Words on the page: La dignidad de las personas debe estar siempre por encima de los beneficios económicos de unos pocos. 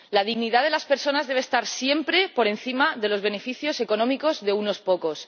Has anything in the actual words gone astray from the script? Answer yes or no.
no